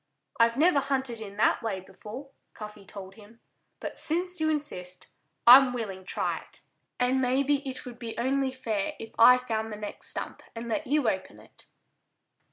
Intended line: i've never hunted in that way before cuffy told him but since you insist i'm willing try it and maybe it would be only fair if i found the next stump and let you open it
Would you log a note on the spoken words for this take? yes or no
no